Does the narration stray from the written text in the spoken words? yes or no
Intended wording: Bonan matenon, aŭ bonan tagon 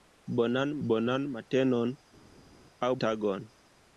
yes